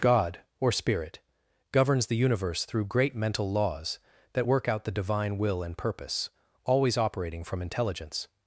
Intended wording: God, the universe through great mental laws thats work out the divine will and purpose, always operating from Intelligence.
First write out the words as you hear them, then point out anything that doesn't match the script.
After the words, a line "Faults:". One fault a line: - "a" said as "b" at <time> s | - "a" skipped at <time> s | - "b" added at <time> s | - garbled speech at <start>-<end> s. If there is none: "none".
God, or Spirit, governs the universe through great mental laws that work out the divine will and purpose, always operating from Intelligence.
Faults:
- "or Spirit governs" added at 0.6 s
- "thats" said as "that" at 4.3 s